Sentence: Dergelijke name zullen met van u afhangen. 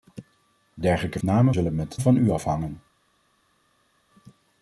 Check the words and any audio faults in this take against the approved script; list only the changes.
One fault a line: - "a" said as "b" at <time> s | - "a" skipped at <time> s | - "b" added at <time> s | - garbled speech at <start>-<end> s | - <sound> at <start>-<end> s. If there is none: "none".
none